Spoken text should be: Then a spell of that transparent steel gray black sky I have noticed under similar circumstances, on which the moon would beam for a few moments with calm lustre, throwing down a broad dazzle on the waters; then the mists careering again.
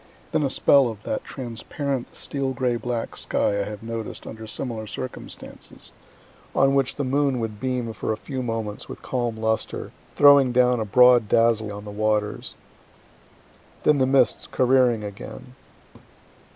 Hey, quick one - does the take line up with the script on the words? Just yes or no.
yes